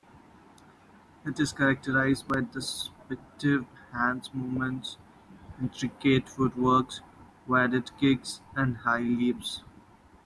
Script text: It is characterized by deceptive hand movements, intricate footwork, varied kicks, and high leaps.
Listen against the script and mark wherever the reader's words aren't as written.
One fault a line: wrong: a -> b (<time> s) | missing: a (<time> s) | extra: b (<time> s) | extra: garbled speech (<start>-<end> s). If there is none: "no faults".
no faults